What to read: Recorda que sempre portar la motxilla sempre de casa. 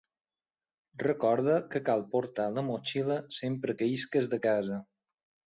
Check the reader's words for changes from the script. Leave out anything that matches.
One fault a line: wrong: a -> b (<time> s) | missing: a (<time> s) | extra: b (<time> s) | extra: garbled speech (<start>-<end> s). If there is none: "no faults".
wrong: sempre -> cal (1.9 s)
extra: que isques (3.8 s)